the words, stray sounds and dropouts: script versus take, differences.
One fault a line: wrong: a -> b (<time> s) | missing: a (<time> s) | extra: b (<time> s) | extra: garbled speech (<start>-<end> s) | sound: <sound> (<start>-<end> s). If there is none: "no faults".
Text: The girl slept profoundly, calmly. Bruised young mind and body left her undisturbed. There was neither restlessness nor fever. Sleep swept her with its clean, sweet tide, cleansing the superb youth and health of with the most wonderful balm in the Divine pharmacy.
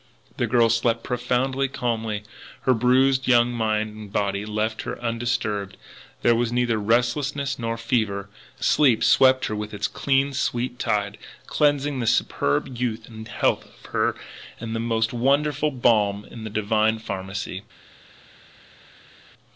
extra: Her (2.6 s)
extra: her (13.9 s)